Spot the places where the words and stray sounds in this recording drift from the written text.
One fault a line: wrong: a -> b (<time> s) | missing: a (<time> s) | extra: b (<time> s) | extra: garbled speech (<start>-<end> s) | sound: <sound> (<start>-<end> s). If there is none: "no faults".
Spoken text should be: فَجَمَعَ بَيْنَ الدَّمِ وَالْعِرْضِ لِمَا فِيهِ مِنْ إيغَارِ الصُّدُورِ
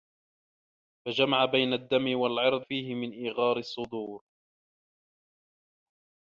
missing: لِمَا (2.6 s)